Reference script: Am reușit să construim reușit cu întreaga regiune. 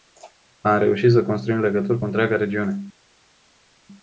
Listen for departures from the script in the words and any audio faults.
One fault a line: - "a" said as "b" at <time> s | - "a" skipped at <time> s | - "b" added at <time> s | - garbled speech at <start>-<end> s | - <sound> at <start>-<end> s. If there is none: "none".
- "reușit" said as "legături" at 1.6 s